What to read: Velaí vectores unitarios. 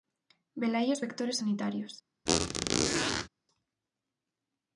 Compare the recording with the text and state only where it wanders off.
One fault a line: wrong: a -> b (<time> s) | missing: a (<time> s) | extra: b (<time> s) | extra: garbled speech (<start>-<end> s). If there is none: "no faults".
extra: os (0.9 s)